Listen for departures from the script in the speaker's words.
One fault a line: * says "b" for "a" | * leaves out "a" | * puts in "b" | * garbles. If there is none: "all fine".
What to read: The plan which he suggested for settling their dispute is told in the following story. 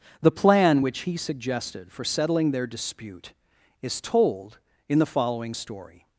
all fine